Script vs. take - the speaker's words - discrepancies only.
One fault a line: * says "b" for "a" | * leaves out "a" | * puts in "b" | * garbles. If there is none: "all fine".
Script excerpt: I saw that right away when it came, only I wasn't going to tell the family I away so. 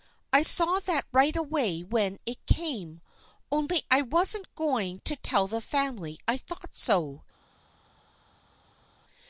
* says "thought" for "away"